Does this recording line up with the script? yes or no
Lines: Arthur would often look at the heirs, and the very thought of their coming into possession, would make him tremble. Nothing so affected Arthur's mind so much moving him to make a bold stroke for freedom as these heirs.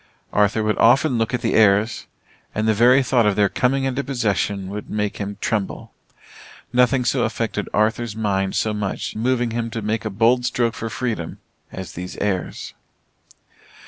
yes